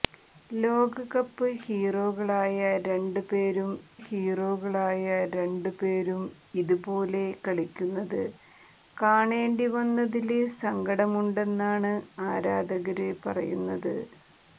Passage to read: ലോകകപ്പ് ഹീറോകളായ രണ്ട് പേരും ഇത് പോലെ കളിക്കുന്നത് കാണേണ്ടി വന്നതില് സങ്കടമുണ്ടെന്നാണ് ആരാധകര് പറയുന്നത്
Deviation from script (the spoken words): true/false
true